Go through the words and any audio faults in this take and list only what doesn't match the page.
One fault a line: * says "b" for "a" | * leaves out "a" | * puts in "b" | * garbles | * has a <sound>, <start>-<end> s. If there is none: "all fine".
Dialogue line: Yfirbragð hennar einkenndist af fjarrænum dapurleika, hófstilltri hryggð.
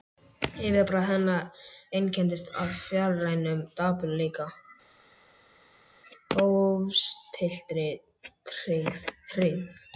all fine